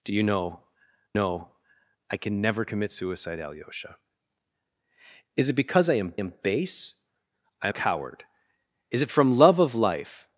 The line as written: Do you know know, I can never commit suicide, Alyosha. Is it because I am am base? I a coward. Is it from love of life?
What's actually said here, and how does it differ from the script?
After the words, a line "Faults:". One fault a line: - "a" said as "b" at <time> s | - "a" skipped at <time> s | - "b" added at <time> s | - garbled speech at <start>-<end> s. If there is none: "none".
Do you know know, I can never commit suicide, Alyosha. Is it because I am am base? I a coward. Is it from love of life?
Faults:
none